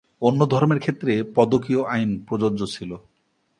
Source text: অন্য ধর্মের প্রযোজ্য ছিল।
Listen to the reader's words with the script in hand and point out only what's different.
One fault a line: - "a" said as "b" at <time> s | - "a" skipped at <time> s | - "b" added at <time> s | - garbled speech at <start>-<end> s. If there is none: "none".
- "ক্ষেত্রে পদকীয় আইন" added at 0.8 s